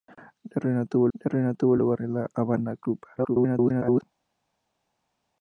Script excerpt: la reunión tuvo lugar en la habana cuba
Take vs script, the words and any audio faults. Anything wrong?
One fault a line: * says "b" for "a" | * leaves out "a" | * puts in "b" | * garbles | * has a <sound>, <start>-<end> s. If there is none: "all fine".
* puts in "la reunión tuvo"
* garbles